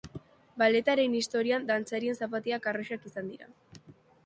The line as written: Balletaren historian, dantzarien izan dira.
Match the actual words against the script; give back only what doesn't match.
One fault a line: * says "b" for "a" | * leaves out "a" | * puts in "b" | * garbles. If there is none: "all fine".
* puts in "zapatilak arrosak"